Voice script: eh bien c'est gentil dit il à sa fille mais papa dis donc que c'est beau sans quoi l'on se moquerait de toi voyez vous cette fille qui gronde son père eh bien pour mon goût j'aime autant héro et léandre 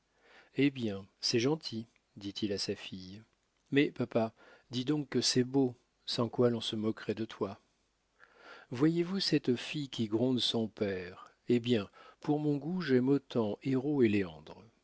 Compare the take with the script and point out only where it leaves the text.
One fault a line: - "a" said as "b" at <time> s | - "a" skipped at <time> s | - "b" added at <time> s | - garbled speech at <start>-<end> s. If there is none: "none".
none